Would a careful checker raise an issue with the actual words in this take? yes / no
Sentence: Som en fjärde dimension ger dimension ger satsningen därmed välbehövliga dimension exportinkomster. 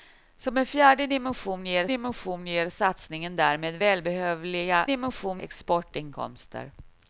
no